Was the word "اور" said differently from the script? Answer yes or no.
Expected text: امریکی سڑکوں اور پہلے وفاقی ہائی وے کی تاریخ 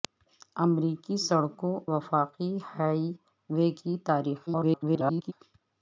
yes